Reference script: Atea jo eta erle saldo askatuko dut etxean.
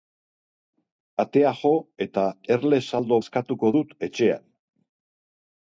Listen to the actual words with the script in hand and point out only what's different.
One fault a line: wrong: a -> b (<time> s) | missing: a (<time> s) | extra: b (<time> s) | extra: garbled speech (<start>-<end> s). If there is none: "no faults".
no faults